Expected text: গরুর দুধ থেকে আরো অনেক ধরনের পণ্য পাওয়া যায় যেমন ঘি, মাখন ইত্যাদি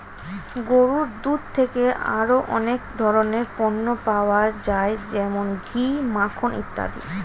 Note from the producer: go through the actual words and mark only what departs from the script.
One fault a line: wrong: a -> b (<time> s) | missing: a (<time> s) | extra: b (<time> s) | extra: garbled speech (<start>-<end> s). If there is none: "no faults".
no faults